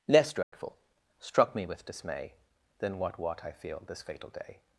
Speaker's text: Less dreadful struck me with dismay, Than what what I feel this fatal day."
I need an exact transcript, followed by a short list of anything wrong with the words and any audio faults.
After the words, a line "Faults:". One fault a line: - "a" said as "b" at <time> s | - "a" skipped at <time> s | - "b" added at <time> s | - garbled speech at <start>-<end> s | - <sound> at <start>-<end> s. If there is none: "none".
Less dreadful struck me with dismay, Than what what I feel this fatal day."
Faults:
- dropout at 0.4-0.5 s